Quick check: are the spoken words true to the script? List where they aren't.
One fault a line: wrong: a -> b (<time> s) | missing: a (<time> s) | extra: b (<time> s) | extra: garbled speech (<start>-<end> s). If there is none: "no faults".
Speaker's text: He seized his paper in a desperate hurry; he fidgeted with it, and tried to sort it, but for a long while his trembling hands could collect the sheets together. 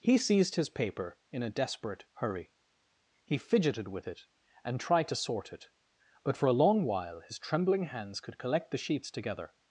no faults